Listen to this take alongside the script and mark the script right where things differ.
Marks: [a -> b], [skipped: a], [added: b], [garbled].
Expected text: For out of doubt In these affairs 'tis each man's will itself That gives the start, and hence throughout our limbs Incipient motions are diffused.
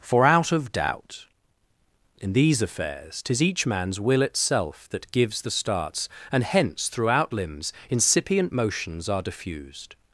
For out of doubt In these affairs 'tis each man's will itself That gives the [start, -> starts] and hence throughout [skipped: our] limbs Incipient motions are diffused.